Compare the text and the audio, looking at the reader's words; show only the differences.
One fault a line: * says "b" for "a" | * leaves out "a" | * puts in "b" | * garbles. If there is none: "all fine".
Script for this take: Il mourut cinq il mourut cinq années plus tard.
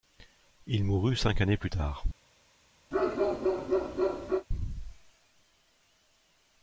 * leaves out "il mourut cinq"